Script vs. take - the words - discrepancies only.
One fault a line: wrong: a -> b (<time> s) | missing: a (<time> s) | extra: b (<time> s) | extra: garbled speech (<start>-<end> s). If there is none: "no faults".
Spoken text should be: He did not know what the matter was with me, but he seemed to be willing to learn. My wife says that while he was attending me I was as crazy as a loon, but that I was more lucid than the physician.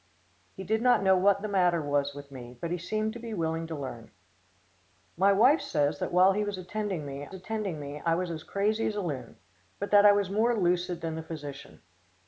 extra: attending me (7.3 s)